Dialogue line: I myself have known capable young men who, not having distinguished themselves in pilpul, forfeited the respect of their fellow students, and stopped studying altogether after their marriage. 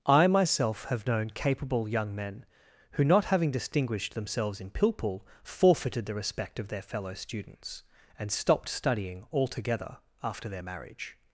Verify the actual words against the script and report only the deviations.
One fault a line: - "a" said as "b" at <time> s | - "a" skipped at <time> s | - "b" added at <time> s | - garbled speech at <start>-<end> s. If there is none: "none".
none